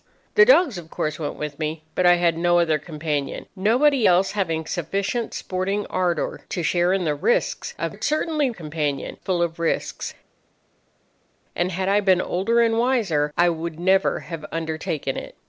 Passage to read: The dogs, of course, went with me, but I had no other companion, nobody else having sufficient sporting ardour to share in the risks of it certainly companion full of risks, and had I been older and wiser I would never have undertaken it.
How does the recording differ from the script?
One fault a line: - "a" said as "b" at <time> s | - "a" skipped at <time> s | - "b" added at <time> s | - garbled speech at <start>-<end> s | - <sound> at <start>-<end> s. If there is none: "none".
none